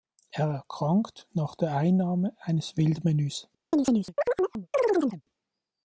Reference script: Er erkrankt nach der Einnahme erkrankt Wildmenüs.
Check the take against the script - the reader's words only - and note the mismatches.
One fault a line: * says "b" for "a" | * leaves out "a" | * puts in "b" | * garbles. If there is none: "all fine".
* says "eines" for "erkrankt"